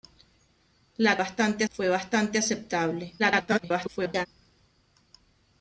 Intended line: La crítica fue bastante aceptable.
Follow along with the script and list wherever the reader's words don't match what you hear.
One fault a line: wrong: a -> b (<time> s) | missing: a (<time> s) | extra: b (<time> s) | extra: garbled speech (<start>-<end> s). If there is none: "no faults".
wrong: crítica -> bastante (1.2 s)
extra: garbled speech (3.2-4.3 s)